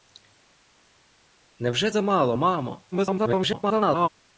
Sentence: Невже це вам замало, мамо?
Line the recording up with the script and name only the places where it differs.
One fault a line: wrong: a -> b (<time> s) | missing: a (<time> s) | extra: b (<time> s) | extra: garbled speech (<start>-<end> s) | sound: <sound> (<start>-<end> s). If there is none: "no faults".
missing: це вам (1.9 s)
extra: garbled speech (2.9-4.1 s)